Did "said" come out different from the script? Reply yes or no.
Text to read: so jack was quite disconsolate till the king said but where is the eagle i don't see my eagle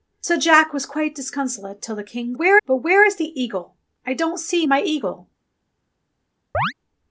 yes